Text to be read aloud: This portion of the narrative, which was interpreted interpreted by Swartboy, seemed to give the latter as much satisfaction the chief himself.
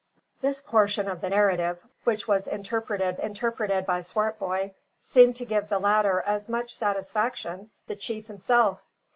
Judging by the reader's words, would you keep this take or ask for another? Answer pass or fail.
pass